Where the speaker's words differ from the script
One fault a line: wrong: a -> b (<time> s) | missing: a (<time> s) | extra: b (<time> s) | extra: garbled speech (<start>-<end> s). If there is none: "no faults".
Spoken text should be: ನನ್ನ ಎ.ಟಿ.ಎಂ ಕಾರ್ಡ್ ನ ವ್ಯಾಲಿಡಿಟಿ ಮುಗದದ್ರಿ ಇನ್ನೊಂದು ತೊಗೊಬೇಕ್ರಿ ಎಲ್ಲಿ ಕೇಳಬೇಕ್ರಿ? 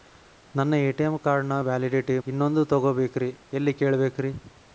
missing: ಮುಗದದ್ರಿ (2.2 s)